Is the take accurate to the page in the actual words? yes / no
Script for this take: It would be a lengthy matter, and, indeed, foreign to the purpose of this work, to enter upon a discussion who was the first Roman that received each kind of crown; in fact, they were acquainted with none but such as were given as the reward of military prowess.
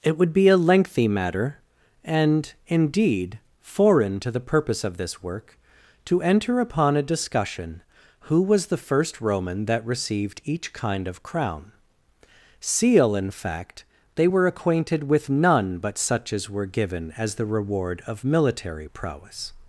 no